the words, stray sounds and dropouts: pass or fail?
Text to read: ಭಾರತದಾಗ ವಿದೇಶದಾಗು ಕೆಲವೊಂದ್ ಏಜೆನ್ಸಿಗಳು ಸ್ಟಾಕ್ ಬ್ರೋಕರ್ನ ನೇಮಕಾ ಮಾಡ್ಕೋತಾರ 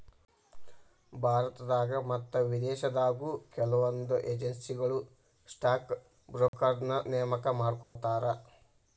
fail